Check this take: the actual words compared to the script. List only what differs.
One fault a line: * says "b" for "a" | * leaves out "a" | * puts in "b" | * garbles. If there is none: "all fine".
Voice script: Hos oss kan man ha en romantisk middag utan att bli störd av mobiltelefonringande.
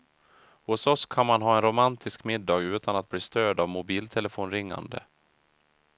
all fine